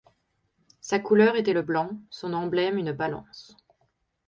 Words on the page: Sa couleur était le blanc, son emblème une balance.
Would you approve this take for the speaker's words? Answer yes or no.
yes